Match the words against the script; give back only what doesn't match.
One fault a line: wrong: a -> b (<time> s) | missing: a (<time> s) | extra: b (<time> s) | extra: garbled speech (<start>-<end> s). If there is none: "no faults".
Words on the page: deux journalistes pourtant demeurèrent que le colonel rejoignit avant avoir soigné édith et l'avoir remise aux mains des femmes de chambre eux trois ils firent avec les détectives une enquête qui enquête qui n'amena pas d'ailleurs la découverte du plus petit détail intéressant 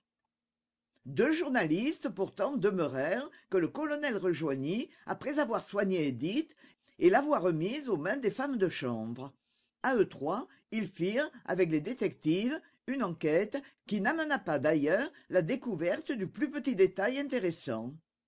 wrong: avant -> après (5.0 s)
extra: à (9.8 s)
missing: enquête qui (14.0 s)